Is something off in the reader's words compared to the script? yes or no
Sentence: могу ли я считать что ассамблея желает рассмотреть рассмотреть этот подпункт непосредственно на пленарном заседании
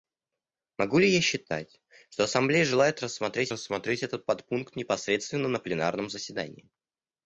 no